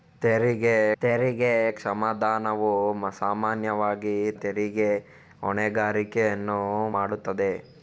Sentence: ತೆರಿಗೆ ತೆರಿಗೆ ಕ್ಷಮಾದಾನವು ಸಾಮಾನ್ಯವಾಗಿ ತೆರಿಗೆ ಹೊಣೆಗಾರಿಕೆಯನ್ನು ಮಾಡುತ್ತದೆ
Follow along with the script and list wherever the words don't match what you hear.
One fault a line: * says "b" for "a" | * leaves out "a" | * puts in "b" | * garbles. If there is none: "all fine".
all fine